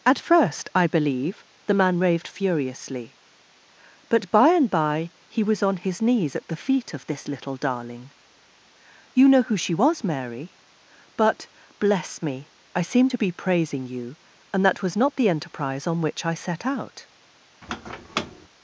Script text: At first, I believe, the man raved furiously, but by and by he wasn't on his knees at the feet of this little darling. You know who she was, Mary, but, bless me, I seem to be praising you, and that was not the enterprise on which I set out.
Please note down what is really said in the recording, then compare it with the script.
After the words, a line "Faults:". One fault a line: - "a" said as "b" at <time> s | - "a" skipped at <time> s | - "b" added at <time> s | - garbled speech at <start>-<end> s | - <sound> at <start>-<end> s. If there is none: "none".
At first, I believe, the man raved furiously, but by and by he was on his knees at the feet of this little darling. You know who she was, Mary, but, bless me, I seem to be praising you, and that was not the enterprise on which I set out.
Faults:
- "wasn't" said as "was" at 5.4 s
- squeak at 17.6-18.5 s